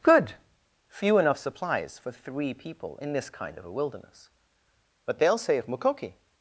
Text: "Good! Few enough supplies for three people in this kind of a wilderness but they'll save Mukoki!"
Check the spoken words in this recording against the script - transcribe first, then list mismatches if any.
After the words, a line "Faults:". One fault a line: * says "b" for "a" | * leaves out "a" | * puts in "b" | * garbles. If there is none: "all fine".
"Good! Few enough supplies for three people in this kind of a wilderness but they'll say of Mukoki!"
Faults:
* says "say of" for "save"